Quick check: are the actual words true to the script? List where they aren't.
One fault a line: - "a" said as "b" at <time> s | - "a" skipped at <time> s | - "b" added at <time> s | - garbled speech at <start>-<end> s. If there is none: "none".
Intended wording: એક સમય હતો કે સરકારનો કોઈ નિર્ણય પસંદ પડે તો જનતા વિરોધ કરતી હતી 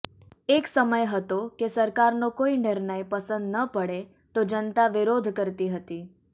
- "ન" added at 3.5 s